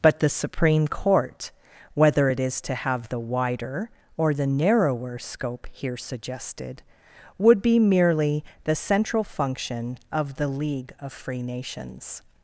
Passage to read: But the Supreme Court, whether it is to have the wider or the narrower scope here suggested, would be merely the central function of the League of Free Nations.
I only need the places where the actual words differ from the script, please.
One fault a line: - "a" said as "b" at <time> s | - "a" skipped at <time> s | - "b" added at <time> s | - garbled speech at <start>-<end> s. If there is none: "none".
none